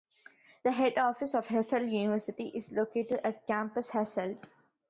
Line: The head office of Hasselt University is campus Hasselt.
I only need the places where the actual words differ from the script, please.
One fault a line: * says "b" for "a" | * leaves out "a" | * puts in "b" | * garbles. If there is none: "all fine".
* puts in "located at"